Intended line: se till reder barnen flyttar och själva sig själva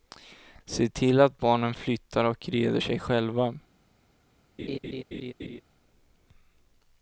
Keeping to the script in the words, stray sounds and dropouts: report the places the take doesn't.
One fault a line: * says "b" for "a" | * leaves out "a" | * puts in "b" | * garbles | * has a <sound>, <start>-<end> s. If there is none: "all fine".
* says "att" for "reder"
* says "reder" for "själva"
* has a laugh, 4.6-5.6 s